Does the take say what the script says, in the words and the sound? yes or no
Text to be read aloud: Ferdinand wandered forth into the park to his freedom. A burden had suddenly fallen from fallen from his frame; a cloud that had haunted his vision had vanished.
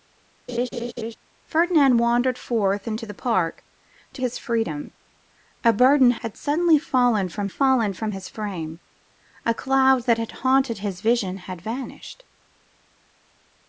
no